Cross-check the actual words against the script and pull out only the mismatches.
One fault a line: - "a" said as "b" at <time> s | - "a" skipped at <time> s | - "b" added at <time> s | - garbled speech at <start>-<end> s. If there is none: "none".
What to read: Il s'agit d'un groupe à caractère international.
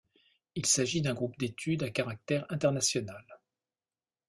- "d'études" added at 1.4 s